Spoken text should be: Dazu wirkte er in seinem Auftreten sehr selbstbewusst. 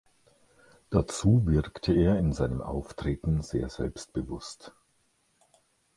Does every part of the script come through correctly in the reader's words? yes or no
yes